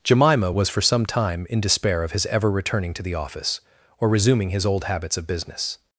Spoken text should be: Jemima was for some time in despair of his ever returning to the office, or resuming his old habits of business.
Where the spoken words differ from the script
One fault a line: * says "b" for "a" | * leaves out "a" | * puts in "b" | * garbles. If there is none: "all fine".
all fine